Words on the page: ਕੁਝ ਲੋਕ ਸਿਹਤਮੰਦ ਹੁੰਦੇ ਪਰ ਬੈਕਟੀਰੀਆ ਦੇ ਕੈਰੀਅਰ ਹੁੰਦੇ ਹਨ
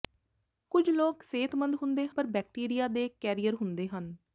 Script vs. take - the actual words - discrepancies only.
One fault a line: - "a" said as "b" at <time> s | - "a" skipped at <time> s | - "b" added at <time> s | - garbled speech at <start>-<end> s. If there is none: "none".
none